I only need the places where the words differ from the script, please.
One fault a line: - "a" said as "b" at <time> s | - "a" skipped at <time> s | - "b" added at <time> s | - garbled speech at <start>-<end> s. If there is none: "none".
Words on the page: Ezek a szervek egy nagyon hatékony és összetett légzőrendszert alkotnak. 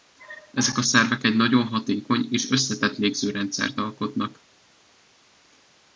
none